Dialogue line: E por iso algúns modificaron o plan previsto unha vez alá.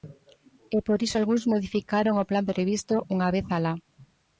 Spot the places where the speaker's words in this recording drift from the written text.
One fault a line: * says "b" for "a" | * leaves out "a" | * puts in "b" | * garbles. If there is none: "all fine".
all fine